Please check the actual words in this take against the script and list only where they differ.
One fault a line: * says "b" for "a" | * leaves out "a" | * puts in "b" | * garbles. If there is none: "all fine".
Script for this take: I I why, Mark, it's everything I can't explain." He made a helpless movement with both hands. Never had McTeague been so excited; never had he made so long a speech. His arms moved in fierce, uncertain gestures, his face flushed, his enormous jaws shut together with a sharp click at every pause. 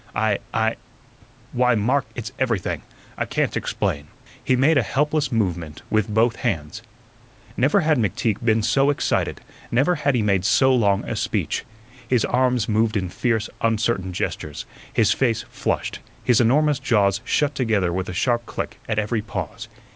all fine